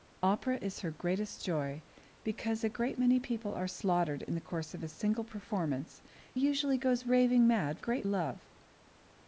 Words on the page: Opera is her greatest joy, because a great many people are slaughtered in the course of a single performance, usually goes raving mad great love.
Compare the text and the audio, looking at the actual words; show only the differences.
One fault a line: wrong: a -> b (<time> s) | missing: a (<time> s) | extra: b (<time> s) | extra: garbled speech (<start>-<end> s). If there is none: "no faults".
no faults